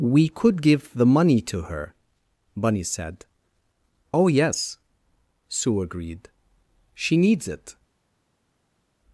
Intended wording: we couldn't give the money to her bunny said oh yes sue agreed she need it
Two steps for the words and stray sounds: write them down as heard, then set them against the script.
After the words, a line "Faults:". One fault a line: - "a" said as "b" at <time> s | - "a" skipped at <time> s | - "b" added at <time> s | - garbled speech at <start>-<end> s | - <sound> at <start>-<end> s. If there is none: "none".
we could give the money to her bunny said oh yes sue agreed she needs it
Faults:
- "couldn't" said as "could" at 0.3 s
- "need" said as "needs" at 7.2 s